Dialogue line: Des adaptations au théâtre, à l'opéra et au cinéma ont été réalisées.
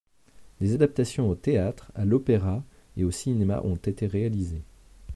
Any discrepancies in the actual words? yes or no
no